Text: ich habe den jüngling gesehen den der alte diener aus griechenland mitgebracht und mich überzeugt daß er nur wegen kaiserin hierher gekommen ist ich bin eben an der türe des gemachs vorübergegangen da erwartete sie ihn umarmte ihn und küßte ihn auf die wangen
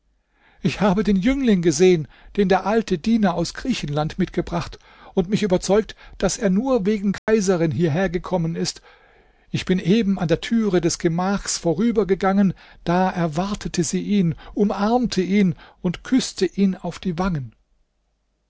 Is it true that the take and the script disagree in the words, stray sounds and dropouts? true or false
true